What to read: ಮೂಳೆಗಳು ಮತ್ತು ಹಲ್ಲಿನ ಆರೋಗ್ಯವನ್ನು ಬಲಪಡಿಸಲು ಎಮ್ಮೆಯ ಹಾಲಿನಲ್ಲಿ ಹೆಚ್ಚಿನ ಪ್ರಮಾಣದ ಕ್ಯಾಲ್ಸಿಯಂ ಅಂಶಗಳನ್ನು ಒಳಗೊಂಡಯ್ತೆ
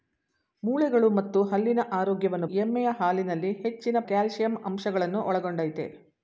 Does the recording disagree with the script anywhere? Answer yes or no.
yes